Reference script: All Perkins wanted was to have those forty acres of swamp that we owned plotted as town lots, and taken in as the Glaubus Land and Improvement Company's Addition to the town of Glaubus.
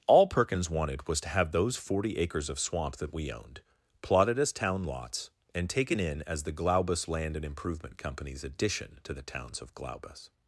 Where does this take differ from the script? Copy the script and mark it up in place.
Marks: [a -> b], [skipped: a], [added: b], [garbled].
All Perkins wanted was to have those forty acres of swamp that we owned plotted as town lots, and taken in as the Glaubus Land and Improvement Company's Addition to the [town -> towns] of Glaubus.